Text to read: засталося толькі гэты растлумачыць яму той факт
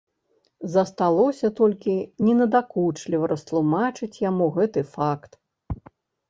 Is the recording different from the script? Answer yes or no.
yes